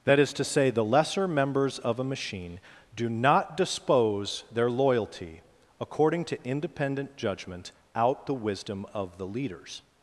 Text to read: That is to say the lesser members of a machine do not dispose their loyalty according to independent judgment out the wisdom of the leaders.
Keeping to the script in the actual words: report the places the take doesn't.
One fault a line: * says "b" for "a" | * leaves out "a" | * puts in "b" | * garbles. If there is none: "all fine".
all fine